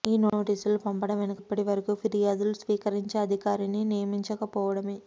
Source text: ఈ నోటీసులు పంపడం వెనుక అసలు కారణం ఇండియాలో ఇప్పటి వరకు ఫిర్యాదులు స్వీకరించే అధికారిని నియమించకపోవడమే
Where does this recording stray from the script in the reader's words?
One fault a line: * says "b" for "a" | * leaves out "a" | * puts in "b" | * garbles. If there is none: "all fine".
* leaves out "అసలు కారణం ఇండియాలో"